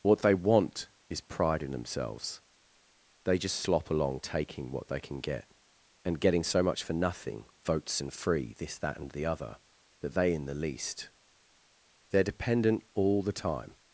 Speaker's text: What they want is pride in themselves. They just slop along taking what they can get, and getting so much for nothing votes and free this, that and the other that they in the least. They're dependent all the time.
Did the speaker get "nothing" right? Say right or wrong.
right